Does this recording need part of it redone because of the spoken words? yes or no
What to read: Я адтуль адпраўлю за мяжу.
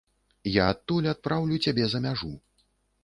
yes